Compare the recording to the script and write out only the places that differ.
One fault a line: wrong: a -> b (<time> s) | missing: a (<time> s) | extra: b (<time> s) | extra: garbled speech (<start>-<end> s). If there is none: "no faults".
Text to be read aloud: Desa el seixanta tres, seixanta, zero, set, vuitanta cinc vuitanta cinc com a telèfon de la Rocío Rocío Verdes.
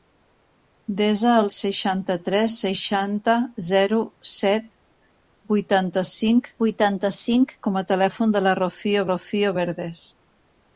no faults